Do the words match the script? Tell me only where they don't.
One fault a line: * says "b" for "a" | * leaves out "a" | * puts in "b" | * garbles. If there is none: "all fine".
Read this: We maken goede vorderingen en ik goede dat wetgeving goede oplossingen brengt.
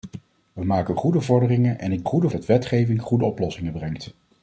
all fine